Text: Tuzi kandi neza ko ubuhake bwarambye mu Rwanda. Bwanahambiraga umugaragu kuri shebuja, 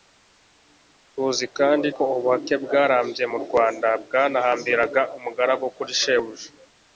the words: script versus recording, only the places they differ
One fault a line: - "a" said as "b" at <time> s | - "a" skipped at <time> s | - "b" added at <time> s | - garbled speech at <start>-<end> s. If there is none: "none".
- "neza" skipped at 1.9 s